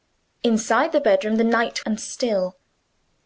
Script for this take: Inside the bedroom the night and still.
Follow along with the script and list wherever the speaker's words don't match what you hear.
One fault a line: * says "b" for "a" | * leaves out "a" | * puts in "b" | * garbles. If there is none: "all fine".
all fine